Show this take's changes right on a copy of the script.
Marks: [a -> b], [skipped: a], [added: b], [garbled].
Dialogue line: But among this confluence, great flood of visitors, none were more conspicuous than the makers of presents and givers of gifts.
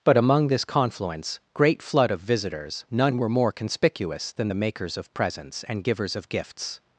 But among this confluence, great flood of visitors, none were more conspicuous than the makers of presents and givers of gifts.